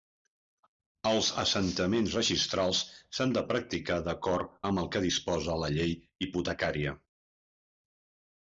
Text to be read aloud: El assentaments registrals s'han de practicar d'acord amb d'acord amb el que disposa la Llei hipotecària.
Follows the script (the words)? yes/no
no